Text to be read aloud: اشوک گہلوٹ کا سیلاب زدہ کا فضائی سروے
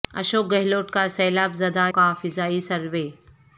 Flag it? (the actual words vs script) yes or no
no